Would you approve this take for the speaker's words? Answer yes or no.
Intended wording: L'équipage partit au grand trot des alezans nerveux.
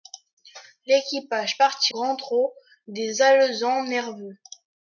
no